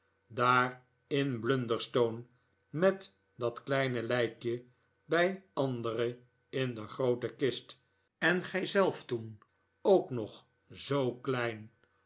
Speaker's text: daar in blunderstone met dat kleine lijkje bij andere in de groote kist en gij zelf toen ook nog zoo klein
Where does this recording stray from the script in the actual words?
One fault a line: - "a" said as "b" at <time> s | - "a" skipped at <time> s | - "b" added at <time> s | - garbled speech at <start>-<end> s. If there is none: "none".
none